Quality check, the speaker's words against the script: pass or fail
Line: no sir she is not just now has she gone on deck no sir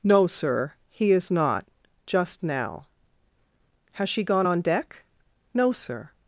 fail